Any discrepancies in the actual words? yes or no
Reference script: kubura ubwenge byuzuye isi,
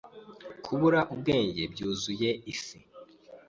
no